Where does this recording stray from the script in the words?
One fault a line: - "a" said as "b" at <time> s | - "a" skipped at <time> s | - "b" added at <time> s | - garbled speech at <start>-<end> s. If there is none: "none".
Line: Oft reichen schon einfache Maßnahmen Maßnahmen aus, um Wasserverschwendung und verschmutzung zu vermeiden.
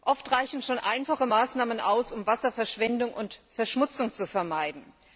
- "Maßnahmen" skipped at 1.8 s